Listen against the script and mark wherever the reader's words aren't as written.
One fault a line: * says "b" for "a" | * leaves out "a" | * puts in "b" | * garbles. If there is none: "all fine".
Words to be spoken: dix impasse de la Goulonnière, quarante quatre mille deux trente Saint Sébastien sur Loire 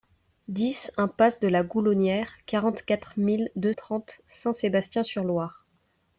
all fine